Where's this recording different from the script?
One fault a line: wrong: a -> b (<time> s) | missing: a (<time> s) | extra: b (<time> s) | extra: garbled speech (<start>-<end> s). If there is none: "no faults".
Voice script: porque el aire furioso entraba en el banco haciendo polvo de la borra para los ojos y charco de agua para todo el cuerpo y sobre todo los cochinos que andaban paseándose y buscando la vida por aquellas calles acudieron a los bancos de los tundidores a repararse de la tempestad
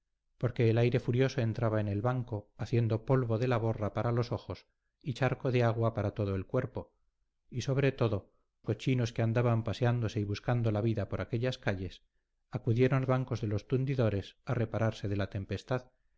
missing: los (8.3 s)
missing: los (13.1 s)